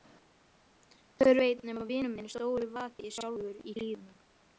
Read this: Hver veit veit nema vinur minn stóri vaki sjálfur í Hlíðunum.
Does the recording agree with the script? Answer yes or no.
no